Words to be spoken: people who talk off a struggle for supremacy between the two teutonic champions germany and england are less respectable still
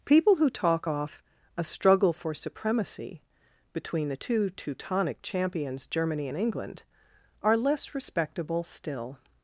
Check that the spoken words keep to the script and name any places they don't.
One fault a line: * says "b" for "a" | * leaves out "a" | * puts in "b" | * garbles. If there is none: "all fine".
all fine